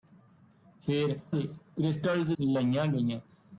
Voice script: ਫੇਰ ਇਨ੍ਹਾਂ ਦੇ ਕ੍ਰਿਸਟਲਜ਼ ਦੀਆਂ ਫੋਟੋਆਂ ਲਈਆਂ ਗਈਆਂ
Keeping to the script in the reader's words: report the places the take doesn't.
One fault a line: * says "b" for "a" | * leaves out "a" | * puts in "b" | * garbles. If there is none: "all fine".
* leaves out "ਇਨ੍ਹਾਂ"
* leaves out "ਦੀਆਂ ਫੋਟੋਆਂ"